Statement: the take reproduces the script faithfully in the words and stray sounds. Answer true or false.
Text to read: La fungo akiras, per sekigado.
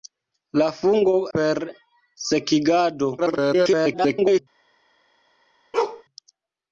false